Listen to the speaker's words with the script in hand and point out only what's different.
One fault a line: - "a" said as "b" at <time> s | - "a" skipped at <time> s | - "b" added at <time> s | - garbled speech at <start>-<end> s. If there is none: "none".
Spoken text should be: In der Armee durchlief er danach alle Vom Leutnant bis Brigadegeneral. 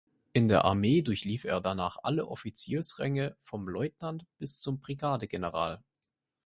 - "Offiziersränge" added at 2.3 s
- "zum" added at 4.6 s